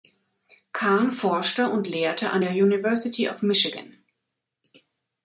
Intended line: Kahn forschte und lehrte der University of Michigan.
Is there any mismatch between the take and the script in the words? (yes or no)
yes